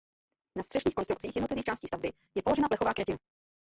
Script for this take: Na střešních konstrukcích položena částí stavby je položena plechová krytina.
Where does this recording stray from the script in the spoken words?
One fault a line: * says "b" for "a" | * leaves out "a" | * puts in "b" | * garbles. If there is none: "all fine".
* says "jednotlivých" for "položena"